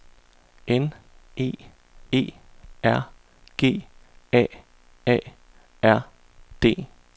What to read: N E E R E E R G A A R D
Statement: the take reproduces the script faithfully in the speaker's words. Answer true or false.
false